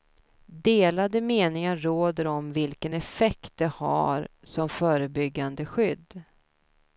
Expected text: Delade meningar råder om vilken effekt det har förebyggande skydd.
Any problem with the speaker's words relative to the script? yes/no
yes